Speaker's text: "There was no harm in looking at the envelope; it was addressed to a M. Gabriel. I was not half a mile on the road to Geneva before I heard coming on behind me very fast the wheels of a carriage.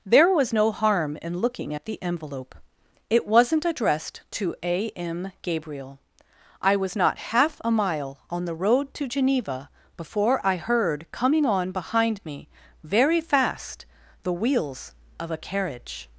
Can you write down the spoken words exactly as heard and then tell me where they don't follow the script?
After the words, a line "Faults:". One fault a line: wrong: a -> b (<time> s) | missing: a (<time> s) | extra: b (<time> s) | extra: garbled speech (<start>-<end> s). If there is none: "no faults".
"There was no harm in looking at the envelope; it wasn't addressed to a M. Gabriel. I was not half a mile on the road to Geneva before I heard coming on behind me very fast the wheels of a carriage.
Faults:
wrong: was -> wasn't (3.3 s)